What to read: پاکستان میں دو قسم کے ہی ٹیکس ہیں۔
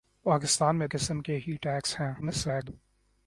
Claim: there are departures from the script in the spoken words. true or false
true